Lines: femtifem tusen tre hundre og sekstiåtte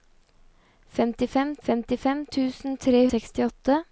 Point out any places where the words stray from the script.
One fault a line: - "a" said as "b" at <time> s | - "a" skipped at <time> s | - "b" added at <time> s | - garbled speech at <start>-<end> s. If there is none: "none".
- "femtifem" added at 1.7 s
- "hundre" skipped at 3.0 s